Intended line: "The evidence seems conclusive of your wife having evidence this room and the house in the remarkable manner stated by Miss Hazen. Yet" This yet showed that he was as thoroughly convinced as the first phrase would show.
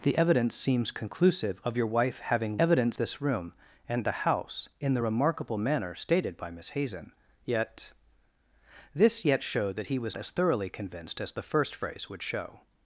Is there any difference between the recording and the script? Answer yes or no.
no